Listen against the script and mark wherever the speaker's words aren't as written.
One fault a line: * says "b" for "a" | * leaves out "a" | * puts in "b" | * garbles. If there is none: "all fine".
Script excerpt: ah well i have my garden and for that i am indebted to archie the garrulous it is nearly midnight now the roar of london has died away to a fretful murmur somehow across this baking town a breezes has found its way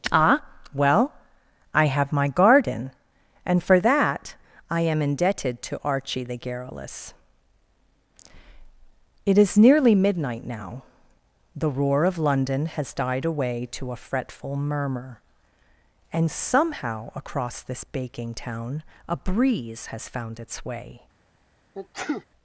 * puts in "and"
* says "breeze" for "breezes"